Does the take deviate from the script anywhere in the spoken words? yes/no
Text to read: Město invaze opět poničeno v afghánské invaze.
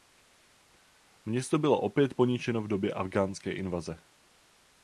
yes